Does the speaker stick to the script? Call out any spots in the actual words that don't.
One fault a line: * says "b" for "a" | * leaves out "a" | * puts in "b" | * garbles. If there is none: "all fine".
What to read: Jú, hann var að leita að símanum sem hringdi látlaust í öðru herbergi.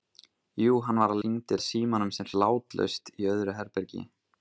* says "hringdi" for "leita"
* leaves out "hringdi"